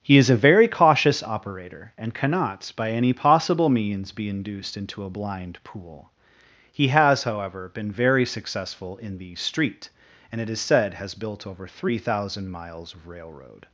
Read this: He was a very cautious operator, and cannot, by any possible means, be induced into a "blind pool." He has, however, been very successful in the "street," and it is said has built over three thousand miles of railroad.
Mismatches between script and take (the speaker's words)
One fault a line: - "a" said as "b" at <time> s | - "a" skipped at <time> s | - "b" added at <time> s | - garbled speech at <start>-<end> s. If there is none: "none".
- "was" said as "is" at 0.2 s